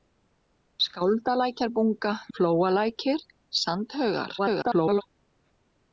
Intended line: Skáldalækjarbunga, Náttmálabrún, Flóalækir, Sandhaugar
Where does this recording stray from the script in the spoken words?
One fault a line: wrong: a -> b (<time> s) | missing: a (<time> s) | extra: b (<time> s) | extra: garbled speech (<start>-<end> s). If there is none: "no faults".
missing: Náttmálabrún (2.1 s)
extra: garbled speech (4.4-5.0 s)